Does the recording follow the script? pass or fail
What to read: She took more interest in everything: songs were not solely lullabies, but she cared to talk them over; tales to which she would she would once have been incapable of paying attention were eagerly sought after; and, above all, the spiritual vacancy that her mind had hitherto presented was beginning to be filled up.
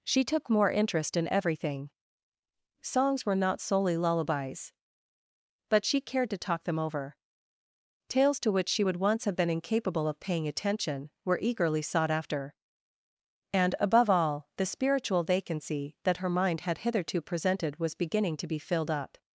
fail